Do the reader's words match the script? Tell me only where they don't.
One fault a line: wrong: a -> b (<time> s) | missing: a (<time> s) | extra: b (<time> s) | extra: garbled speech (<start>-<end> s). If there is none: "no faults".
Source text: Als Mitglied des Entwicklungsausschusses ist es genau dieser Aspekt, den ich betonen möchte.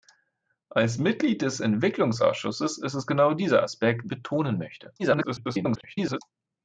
missing: den ich (4.1 s)
extra: garbled speech (5.0-6.2 s)